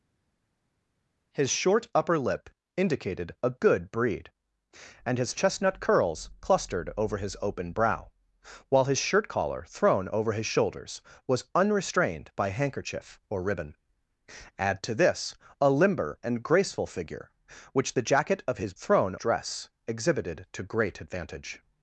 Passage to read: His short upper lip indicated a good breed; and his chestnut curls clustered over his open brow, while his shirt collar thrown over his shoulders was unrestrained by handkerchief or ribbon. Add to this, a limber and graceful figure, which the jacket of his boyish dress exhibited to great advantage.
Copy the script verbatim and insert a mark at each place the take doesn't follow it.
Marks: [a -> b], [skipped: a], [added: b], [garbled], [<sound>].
His short upper lip indicated a good breed; and his chestnut curls clustered over his open brow, while his shirt collar thrown over his shoulders was unrestrained by handkerchief or ribbon. Add to this, a limber and graceful figure, which the jacket of his [boyish -> thrown] dress exhibited to great advantage.